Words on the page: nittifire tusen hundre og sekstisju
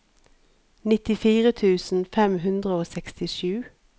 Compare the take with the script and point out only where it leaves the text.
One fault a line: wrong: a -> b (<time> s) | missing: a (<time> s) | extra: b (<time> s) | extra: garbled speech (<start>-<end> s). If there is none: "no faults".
extra: fem (2.1 s)